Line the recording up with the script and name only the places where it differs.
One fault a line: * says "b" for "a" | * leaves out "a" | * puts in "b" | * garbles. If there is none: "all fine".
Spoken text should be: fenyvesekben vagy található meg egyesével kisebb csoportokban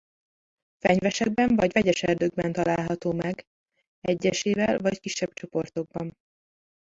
* puts in "vegyes erdőkben"
* puts in "vagy"